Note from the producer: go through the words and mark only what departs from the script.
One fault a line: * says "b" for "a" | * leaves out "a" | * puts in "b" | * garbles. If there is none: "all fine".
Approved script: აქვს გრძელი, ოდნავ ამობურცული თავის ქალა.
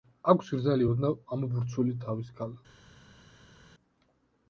all fine